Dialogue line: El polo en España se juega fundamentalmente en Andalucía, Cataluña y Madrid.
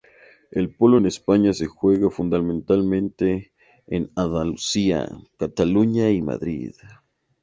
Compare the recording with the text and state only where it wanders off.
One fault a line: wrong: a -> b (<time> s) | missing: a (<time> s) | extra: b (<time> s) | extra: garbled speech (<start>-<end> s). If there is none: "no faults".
no faults